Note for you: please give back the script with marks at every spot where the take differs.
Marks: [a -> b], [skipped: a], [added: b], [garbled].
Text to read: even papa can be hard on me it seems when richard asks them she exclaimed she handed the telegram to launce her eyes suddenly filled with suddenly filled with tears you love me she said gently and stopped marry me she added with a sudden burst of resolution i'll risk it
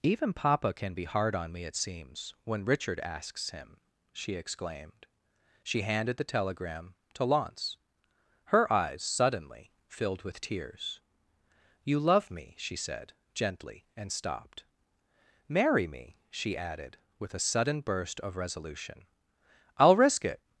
even papa can be hard on me it seems when richard asks [them -> him] she exclaimed she handed the telegram to launce her eyes suddenly filled with [skipped: suddenly filled with] tears you love me she said gently and stopped marry me she added with a sudden burst of resolution i'll risk it